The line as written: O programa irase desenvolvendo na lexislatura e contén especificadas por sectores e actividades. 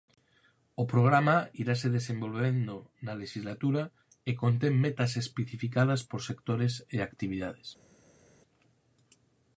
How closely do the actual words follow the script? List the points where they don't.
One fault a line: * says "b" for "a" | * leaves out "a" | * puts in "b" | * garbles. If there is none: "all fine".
* puts in "metas"